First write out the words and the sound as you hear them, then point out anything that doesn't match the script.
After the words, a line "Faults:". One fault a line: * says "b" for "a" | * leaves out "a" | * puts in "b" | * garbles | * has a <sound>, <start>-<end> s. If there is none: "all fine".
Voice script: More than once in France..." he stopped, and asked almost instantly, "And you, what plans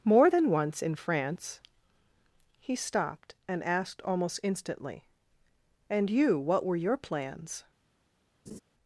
More than once in France..." he stopped, and asked almost instantly, "And you, what were your plans
Faults:
* puts in "were your"
* has a laugh, 8.5-8.6 s